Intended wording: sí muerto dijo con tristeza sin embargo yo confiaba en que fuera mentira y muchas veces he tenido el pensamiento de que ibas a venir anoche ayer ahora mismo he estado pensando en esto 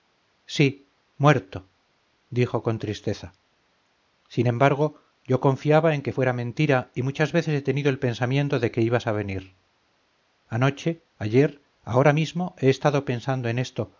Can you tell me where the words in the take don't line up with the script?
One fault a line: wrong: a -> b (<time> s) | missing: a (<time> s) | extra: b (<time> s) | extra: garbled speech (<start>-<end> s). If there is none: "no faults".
no faults